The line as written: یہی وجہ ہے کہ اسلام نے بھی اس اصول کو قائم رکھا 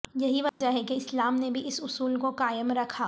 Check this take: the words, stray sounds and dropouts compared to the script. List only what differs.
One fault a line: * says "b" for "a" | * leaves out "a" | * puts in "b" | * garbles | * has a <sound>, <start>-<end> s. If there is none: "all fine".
* has a dropout, 0.5-0.6 s